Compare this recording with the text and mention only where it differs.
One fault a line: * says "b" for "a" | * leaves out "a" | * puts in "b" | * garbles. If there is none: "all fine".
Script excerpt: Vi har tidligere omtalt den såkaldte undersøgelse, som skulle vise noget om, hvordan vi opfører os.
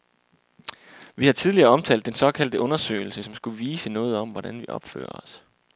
all fine